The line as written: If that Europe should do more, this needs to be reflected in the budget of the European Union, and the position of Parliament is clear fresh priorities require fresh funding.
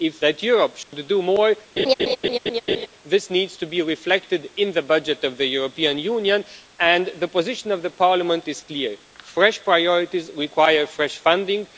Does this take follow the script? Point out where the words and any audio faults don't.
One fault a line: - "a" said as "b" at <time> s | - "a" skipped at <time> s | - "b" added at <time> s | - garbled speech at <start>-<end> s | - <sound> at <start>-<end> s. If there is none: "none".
- dropout at 0.8-0.9 s
- laugh at 1.8-2.9 s